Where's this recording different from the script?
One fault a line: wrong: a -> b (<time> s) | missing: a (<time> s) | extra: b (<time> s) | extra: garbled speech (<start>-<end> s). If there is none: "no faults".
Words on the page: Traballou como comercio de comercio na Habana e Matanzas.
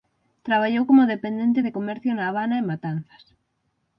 wrong: comercio -> dependente (1.1 s)